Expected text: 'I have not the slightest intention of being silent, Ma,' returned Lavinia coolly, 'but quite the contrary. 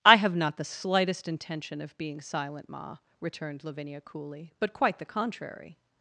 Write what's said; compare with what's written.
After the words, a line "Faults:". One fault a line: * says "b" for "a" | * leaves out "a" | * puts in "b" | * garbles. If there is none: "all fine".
'I have not the slightest intention of being silent, Ma,' returned Lavinia coolly, 'but quite the contrary.
Faults:
all fine